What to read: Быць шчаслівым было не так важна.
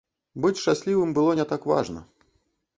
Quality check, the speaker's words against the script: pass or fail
pass